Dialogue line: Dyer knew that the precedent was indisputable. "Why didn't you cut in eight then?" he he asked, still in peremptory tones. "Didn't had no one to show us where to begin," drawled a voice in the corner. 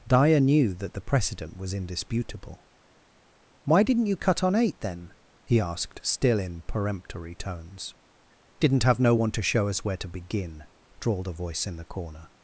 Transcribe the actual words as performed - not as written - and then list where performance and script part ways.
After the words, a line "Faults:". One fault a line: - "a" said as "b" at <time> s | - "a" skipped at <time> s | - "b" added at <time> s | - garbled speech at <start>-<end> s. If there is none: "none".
Dyer knew that the precedent was indisputable. "Why didn't you cut on eight then?" he asked, still in peremptory tones. "Didn't have no one to show us where to begin," drawled a voice in the corner.
Faults:
- "in" said as "on" at 4.4 s
- "he" skipped at 5.6 s
- "had" said as "have" at 8.8 s